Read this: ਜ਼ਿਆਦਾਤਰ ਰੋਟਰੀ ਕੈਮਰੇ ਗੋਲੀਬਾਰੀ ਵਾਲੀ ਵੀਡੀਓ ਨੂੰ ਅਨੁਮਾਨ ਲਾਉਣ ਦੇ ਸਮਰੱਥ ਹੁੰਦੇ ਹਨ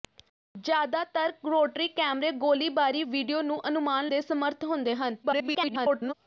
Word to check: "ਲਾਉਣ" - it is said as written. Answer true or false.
false